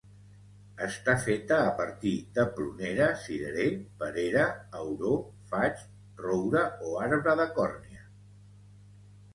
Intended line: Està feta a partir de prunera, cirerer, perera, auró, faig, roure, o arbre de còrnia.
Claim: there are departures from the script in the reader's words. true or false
false